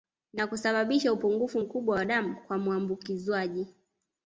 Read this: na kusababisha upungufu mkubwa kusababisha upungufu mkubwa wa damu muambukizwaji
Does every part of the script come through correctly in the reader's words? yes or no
no